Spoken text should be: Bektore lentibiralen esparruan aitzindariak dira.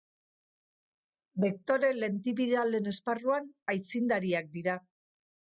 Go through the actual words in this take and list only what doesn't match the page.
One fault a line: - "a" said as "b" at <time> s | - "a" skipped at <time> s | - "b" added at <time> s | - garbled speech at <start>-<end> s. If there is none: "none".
none